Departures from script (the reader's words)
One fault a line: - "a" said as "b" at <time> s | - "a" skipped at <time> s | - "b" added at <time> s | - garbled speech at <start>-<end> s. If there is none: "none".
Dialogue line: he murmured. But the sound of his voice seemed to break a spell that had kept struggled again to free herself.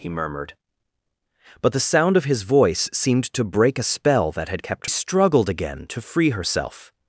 none